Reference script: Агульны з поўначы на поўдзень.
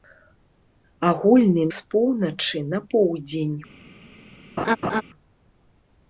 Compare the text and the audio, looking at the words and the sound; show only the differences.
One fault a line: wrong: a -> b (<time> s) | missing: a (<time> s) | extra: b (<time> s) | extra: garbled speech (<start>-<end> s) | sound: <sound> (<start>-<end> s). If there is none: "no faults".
sound: laugh (4.6-5.0 s)